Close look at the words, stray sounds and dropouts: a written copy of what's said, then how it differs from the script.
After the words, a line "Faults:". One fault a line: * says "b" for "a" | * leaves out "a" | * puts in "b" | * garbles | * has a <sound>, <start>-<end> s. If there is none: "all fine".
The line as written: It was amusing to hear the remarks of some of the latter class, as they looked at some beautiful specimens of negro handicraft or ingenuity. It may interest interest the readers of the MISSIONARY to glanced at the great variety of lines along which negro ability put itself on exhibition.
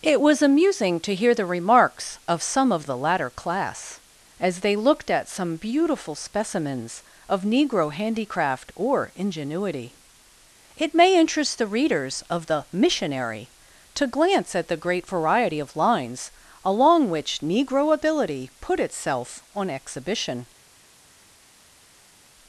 It was amusing to hear the remarks of some of the latter class, as they looked at some beautiful specimens of negro handicraft or ingenuity. It may interest the readers of the MISSIONARY to glance at the great variety of lines along which negro ability put itself on exhibition.
Faults:
* leaves out "interest"
* says "glance" for "glanced"